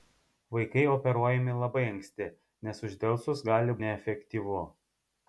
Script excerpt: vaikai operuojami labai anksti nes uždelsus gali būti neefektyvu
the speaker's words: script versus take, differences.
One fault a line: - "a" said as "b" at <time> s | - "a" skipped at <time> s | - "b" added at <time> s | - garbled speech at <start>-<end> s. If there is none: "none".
- "būti" skipped at 3.8 s